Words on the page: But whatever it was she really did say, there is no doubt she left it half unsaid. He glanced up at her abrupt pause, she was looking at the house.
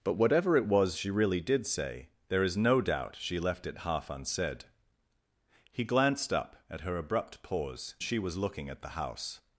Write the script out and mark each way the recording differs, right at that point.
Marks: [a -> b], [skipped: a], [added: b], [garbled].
But whatever it was she really did say, there is no doubt she left it half unsaid. He glanced up at her abrupt pause, she was looking at the house.